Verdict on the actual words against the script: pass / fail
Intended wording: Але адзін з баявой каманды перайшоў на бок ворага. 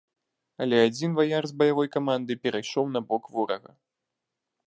fail